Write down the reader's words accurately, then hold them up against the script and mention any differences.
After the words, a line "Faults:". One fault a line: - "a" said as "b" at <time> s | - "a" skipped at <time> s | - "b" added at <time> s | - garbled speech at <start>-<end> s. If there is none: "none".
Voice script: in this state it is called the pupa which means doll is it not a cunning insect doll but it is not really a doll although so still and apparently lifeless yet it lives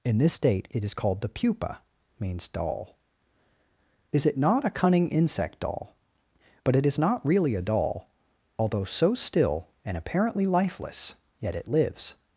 in this state it is called the pupa means doll is it not a cunning insect doll but it is not really a doll although so still and apparently lifeless yet it lives
Faults:
- "which" skipped at 1.8 s